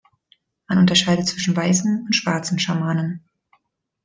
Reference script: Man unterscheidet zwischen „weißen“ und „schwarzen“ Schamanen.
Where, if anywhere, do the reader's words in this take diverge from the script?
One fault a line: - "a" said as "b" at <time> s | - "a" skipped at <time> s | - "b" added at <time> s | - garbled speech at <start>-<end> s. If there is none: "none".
none